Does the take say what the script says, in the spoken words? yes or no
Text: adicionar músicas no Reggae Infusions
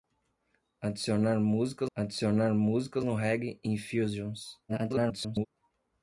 no